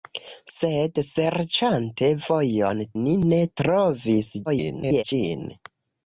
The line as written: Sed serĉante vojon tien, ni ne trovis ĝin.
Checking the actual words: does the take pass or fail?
fail